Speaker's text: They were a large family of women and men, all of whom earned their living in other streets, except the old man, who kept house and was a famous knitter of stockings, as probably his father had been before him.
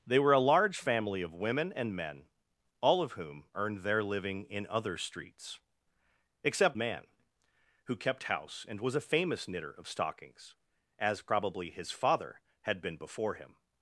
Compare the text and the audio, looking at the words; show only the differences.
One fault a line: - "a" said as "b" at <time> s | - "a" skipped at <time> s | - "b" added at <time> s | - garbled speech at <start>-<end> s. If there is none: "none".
- "the old" skipped at 6.8 s